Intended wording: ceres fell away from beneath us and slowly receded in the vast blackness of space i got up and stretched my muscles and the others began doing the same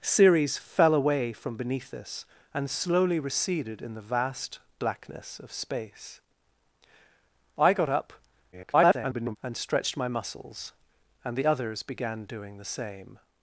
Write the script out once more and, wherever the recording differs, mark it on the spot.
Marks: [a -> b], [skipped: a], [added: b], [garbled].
ceres fell away from beneath us and slowly receded in the vast blackness of space i got up [garbled] and stretched my muscles and the others began doing the same